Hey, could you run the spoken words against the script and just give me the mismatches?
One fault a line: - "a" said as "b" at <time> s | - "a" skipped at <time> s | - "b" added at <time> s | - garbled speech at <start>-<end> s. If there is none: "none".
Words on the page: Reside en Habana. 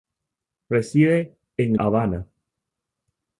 none